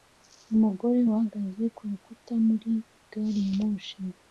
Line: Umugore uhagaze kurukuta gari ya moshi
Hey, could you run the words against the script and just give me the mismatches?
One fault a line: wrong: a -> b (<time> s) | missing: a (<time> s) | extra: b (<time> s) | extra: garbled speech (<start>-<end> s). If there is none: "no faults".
extra: muri (2.5 s)